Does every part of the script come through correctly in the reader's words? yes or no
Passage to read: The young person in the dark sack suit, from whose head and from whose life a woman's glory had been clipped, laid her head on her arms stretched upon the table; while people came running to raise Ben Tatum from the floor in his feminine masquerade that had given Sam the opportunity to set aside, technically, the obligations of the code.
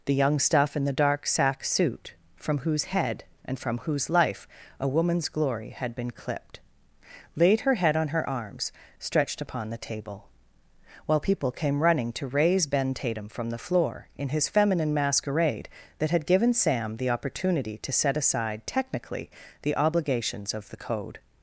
no